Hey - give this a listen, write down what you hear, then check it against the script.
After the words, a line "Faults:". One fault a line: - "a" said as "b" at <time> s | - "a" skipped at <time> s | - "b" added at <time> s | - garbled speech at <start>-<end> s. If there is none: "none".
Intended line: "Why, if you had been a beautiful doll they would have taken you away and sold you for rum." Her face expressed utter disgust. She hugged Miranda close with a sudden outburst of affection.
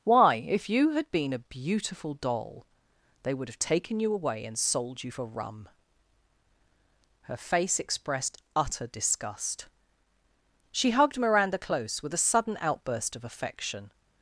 "Why, if you had been a beautiful doll they would have taken you away and sold you for rum." Her face expressed utter disgust. She hugged Miranda close with a sudden outburst of affection.
Faults:
none